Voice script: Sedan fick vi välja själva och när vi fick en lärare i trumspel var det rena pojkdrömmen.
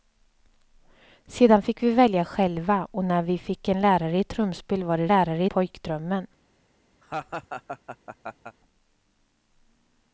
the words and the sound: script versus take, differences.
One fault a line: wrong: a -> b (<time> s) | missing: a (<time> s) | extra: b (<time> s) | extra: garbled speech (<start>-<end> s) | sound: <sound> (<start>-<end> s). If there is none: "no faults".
wrong: rena -> lärare (5.1 s)
sound: laugh (7.0-8.6 s)